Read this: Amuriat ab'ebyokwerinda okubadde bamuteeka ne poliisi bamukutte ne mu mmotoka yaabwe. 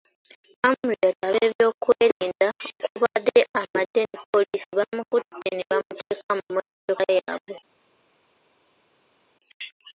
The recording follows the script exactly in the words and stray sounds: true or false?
false